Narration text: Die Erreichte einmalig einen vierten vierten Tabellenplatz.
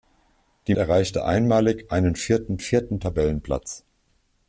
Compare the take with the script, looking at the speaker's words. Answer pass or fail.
pass